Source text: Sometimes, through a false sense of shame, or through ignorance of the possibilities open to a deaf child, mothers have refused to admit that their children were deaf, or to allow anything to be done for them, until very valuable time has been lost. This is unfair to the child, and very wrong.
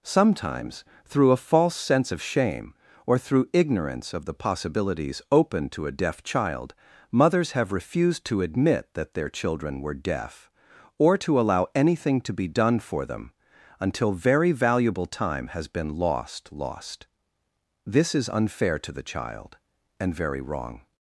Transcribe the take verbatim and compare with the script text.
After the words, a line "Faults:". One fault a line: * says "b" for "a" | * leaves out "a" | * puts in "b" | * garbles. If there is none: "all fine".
Sometimes, through a false sense of shame, or through ignorance of the possibilities open to a deaf child, mothers have refused to admit that their children were deaf, or to allow anything to be done for them, until very valuable time has been lost lost. This is unfair to the child, and very wrong.
Faults:
* puts in "lost"